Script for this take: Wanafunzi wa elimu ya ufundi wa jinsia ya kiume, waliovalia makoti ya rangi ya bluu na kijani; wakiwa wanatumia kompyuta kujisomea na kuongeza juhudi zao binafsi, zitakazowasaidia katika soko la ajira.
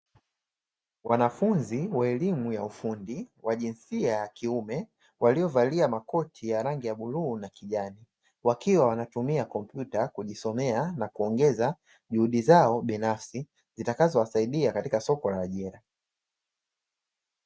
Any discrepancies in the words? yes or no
no